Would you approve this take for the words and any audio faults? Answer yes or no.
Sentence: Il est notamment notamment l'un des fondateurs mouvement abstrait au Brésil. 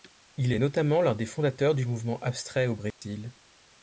no